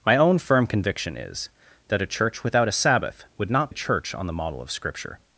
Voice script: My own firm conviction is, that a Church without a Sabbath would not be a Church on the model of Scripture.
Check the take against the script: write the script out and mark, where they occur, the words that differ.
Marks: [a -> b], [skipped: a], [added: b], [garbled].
My own firm conviction is, that a Church without a Sabbath would not [skipped: be] a Church on the model of Scripture.